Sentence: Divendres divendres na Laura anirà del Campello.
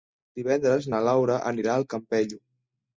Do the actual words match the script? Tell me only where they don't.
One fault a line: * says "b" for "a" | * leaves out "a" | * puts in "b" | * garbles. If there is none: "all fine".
* leaves out "divendres"
* says "al" for "del"